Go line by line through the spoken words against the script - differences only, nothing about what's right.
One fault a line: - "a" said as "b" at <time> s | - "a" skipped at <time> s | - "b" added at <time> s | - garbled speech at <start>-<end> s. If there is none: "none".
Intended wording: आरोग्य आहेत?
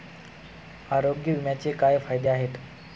- "विम्याचे काय फायदे" added at 1.3 s